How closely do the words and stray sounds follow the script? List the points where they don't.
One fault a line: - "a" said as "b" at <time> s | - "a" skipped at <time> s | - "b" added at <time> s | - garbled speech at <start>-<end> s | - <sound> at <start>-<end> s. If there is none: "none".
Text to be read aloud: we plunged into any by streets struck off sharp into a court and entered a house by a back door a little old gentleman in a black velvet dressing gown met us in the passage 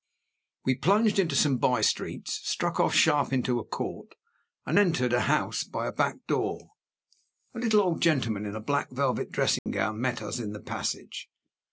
- "any" said as "some" at 1.4 s
- dropout at 9.6-9.7 s